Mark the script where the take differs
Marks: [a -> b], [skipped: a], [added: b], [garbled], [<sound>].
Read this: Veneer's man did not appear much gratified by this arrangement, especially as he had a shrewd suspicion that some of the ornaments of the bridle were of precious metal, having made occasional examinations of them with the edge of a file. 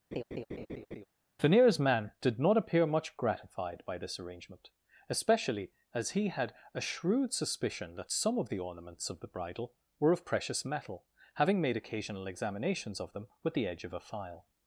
[laugh] Veneer's man did not appear much gratified by this arrangement, especially as he had a shrewd suspicion that some of the ornaments of the bridle were of precious metal, having made occasional examinations of them with the edge of a file.